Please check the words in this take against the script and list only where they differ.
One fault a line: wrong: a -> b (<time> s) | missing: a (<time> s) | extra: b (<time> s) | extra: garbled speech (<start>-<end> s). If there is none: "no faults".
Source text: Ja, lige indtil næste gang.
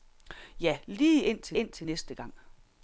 extra: indtil (1.5 s)